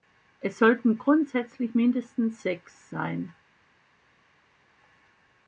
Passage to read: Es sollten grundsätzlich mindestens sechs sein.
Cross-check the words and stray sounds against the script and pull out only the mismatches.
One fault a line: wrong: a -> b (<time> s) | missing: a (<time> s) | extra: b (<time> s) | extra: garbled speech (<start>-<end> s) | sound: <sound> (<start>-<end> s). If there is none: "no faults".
no faults